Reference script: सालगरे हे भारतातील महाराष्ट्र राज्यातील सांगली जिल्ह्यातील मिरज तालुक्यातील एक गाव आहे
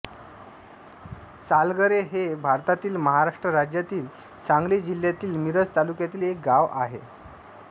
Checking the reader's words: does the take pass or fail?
pass